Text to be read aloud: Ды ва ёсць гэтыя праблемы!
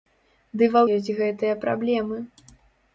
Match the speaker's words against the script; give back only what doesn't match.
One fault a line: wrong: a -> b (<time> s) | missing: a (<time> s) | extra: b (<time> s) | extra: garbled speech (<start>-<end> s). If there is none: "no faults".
no faults